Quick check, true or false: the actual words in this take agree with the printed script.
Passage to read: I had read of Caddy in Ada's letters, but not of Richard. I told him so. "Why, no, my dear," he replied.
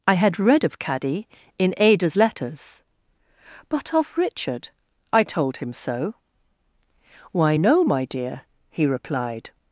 false